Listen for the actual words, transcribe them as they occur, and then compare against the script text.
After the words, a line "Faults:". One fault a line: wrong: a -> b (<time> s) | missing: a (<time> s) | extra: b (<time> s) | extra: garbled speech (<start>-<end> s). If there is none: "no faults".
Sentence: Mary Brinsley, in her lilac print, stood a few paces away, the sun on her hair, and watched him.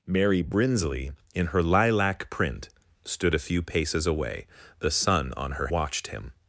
Mary Brinsley, in her lilac print, stood a few paces away, the sun on her watched him.
Faults:
missing: hair and (5.7 s)